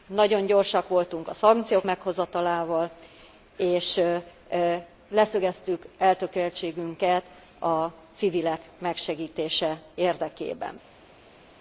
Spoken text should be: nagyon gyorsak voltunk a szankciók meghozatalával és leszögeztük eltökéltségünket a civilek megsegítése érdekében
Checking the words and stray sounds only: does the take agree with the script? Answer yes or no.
yes